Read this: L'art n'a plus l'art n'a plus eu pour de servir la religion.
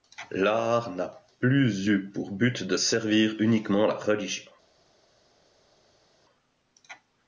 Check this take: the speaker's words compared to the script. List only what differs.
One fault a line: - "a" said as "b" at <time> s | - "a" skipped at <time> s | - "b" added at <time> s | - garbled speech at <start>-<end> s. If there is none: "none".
- "l'art n'a plus" skipped at 1.9 s
- "but" added at 2.3 s
- "uniquement" added at 3.4 s